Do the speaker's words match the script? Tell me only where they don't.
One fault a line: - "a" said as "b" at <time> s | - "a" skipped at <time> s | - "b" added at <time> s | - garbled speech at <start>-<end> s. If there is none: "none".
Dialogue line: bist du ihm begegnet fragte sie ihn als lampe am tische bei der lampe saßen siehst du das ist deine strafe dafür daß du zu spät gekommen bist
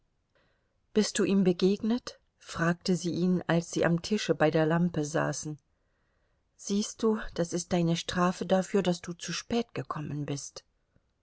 - "lampe" said as "sie" at 3.7 s